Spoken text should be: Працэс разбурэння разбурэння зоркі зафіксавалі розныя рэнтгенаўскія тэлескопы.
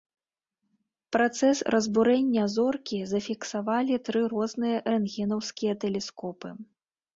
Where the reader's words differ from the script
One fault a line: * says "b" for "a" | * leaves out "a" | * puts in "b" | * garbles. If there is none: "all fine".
* leaves out "разбурэння"
* puts in "тры"